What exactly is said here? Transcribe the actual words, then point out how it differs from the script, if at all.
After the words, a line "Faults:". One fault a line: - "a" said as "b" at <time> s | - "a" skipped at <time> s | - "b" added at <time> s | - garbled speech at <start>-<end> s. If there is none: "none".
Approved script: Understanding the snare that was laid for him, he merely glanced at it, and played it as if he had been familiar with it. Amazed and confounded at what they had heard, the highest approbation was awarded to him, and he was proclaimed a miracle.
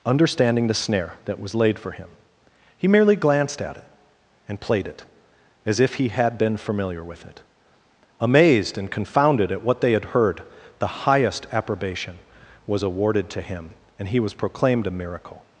Understanding the snare that was laid for him, he merely glanced at it, and played it as if he had been familiar with it. Amazed and confounded at what they had heard, the highest approbation was awarded to him, and he was proclaimed a miracle.
Faults:
none